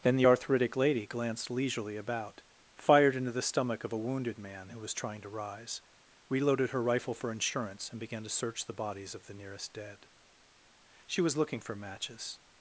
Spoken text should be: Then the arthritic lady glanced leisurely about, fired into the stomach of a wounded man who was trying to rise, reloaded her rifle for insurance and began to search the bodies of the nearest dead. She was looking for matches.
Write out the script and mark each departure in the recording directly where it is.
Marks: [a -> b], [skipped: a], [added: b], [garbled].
Then the arthritic lady glanced leisurely about, fired into the stomach of a wounded man who was trying to rise, reloaded her rifle for insurance and began to search the bodies of the nearest dead. She was looking for matches.